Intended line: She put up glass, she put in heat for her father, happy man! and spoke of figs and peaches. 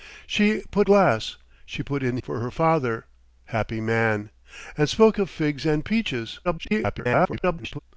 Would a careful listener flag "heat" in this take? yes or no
yes